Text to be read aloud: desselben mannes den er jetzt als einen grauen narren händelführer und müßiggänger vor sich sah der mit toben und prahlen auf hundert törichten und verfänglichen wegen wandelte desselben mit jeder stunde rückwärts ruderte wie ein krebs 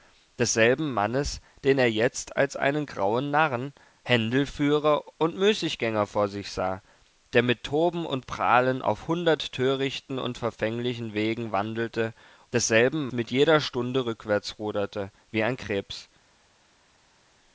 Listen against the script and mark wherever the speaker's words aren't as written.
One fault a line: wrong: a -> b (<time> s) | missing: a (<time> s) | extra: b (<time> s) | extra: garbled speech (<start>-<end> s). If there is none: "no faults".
no faults